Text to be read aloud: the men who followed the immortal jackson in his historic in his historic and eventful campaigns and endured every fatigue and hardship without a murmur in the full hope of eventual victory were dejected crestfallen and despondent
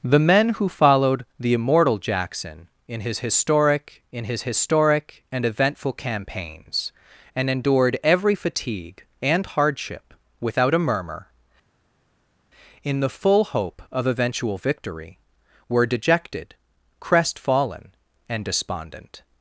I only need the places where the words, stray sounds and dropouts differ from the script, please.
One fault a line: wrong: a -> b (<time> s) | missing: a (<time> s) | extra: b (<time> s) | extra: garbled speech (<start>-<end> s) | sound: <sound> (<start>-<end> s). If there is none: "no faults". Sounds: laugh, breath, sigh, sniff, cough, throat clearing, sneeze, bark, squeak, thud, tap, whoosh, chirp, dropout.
no faults